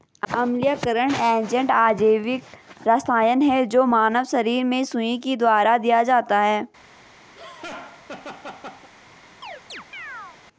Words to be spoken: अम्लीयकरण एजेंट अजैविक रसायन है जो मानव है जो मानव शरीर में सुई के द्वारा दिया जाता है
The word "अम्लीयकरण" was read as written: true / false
true